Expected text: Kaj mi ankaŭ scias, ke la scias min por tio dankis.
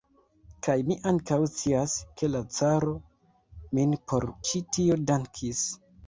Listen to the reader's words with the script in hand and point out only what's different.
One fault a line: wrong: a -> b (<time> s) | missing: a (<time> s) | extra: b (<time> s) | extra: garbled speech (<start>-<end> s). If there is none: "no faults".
wrong: scias -> caro (2.6 s)
extra: ĉi (4.5 s)